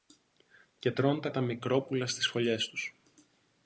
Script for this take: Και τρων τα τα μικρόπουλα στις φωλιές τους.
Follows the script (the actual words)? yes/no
yes